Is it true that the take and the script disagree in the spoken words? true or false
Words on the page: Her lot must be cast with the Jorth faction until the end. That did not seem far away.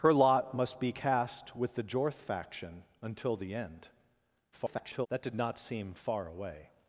true